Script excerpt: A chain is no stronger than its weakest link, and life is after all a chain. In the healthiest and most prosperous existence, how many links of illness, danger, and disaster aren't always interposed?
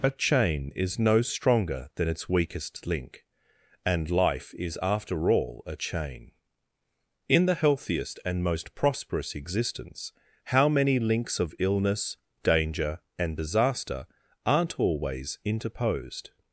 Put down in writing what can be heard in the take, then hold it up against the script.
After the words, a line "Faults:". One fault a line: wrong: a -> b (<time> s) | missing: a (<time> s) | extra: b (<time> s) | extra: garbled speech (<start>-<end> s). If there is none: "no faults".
A chain is no stronger than its weakest link, and life is after all a chain. In the healthiest and most prosperous existence, how many links of illness, danger, and disaster aren't always interposed?
Faults:
no faults